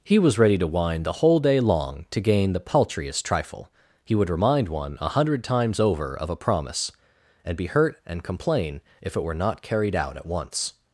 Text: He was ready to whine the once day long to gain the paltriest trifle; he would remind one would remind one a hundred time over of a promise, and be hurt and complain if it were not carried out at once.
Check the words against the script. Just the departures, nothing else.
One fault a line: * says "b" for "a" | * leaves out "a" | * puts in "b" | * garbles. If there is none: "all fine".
* says "whole" for "once"
* leaves out "would remind one"
* says "times" for "time"